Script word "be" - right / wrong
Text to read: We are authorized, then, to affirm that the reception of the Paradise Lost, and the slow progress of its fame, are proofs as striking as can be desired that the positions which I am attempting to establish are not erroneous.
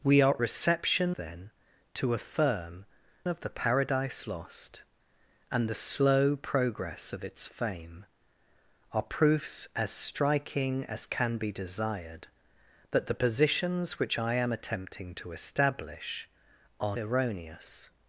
right